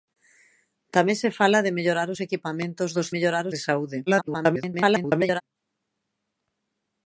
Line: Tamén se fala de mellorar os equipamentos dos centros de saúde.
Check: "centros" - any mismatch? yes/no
yes